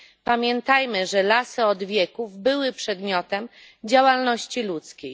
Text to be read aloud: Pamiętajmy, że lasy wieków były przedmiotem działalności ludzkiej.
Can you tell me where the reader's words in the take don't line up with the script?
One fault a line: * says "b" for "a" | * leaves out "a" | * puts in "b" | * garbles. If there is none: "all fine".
* puts in "od"